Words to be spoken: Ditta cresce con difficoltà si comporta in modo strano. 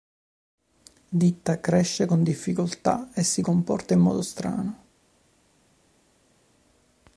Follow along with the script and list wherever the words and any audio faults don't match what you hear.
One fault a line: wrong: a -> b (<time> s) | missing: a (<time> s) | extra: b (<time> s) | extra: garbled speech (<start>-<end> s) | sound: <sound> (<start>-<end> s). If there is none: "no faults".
extra: e (3.1 s)